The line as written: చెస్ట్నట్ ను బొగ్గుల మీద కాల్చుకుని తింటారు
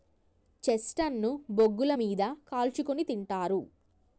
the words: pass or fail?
pass